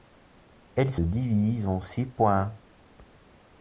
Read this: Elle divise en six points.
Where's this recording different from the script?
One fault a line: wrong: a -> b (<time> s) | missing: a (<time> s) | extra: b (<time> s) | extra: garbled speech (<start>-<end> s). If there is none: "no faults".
no faults